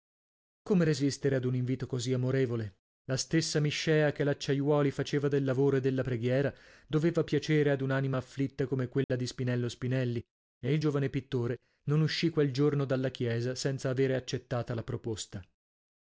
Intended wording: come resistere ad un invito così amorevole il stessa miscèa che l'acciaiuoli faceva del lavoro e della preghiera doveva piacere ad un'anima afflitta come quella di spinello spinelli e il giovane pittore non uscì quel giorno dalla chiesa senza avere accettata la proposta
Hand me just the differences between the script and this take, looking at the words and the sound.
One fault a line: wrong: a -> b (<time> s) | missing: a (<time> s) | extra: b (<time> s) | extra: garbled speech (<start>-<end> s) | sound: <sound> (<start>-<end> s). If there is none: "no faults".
wrong: il -> la (3.0 s)
sound: dropout (9.0-9.1 s)